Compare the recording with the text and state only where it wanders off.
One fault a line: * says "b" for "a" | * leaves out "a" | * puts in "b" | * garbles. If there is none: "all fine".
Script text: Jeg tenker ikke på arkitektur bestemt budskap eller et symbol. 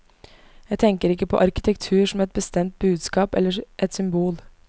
* puts in "som et"